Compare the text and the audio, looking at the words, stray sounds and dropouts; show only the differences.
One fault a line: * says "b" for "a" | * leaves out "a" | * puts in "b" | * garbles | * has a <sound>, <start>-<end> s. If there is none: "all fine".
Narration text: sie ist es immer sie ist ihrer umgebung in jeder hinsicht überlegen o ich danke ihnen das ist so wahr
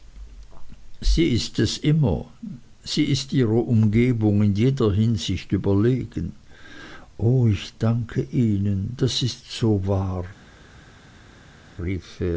all fine